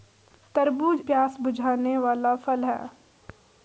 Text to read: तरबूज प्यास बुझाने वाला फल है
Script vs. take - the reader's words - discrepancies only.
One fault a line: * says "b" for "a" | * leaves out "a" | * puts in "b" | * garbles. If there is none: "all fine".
all fine